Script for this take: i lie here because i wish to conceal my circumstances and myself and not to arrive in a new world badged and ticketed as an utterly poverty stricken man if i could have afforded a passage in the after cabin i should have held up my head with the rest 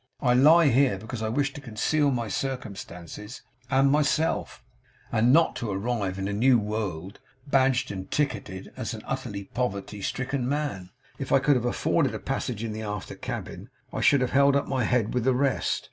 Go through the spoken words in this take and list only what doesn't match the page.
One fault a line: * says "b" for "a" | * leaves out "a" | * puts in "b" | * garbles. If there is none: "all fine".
all fine